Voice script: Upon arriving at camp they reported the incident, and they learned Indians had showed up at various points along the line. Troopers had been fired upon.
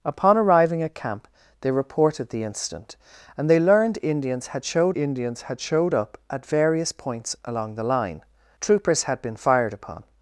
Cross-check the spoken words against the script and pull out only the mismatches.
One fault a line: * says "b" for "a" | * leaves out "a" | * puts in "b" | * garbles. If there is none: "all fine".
* puts in "Indians had showed"